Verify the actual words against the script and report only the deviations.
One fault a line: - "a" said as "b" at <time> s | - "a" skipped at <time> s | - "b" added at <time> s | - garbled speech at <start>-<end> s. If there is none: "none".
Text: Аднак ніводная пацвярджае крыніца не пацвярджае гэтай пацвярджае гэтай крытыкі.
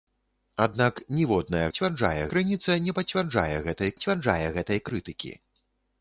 none